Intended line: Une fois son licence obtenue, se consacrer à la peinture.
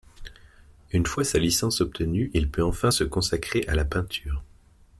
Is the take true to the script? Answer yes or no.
no